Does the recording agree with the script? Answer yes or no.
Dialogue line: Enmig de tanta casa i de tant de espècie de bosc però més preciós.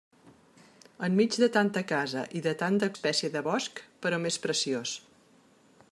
yes